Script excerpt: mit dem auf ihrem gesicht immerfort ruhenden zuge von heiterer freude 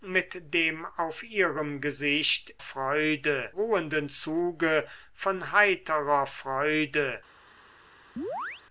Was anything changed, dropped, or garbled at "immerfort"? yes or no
yes